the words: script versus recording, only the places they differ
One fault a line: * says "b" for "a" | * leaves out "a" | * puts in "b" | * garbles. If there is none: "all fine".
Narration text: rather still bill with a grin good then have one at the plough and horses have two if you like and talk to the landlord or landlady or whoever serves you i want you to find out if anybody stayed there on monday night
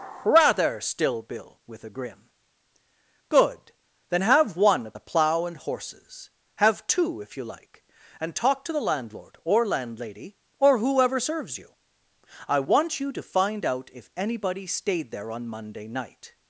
all fine